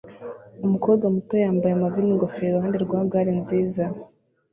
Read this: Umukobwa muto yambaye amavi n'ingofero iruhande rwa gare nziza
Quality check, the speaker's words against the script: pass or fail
pass